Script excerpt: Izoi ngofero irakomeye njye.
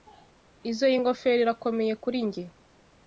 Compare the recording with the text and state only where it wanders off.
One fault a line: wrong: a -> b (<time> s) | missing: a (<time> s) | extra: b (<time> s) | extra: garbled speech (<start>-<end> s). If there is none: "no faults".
extra: kuri (2.0 s)